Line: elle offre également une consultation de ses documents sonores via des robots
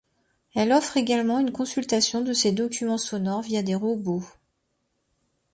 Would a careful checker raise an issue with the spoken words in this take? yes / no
no